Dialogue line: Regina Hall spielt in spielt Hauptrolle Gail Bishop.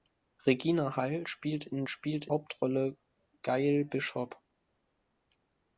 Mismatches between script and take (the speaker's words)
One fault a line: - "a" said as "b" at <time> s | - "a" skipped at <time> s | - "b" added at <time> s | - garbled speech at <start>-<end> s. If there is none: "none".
none